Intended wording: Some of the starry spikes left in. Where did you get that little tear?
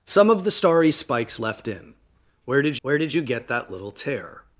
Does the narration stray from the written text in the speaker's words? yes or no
yes